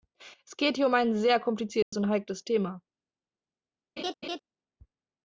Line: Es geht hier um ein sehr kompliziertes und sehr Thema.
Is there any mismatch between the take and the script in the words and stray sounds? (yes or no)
yes